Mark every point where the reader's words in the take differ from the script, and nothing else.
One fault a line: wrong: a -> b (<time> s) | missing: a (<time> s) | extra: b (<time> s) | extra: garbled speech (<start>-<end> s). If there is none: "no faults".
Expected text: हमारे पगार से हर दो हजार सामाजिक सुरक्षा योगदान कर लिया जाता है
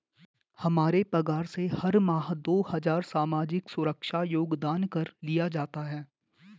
extra: माह (2.0 s)